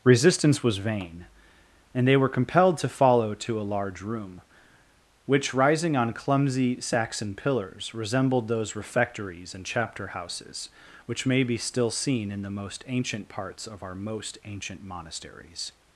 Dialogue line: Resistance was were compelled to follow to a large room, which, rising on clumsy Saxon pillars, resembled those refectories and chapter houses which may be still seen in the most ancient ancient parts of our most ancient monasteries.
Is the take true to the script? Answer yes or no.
no